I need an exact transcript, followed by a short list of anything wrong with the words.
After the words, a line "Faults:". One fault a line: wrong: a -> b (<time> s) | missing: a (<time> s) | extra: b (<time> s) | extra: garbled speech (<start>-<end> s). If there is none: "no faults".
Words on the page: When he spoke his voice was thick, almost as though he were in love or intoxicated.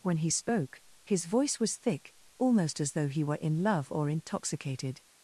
When he spoke his voice was thick, almost as though he were in love or intoxicated.
Faults:
no faults